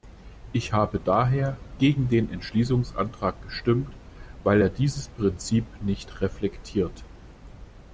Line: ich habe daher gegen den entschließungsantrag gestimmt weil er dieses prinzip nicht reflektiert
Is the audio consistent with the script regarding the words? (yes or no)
yes